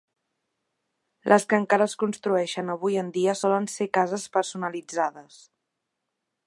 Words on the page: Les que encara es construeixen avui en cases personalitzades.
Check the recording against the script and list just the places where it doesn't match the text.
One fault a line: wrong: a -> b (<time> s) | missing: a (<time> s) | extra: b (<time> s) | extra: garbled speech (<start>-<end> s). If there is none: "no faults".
extra: dia solen ser (3.2 s)